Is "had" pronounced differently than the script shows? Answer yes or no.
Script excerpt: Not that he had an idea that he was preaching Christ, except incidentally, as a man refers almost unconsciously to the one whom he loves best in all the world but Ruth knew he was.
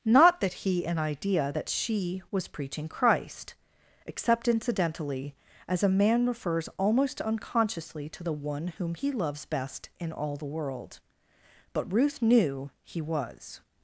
yes